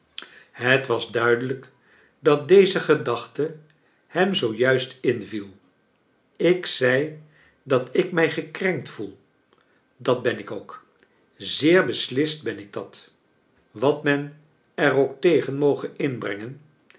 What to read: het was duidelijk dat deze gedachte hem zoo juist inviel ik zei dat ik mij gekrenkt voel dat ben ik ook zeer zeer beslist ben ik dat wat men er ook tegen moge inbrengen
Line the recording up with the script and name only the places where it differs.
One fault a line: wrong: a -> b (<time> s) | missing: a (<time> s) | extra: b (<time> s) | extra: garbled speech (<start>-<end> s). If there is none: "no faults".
missing: zeer (11.9 s)